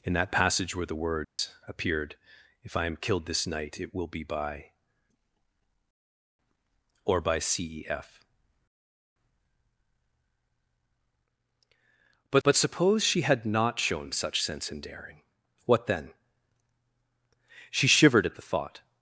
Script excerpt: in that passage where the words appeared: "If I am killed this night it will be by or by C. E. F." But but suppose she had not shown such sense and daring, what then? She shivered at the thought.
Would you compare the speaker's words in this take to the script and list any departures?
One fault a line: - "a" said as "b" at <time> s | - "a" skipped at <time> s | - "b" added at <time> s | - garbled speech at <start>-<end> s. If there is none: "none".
none